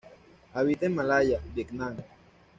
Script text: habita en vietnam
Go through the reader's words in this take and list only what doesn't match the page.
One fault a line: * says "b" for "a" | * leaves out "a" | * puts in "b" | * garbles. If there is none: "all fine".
* puts in "malaya"